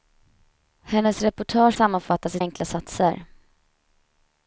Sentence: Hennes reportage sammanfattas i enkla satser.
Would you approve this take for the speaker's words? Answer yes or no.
yes